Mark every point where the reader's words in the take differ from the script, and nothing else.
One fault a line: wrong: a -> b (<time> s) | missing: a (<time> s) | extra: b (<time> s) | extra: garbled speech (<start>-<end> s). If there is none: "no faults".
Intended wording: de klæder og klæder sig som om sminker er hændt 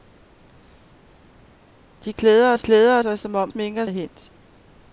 no faults